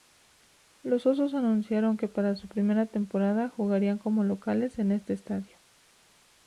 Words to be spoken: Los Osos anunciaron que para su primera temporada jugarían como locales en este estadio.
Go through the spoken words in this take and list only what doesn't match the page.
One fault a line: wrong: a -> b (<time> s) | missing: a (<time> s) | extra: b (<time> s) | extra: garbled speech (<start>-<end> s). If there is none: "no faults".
no faults